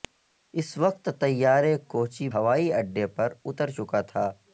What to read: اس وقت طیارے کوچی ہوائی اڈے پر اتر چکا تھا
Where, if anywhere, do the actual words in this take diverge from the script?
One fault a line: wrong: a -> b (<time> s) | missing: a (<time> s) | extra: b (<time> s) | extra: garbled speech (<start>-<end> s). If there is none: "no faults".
no faults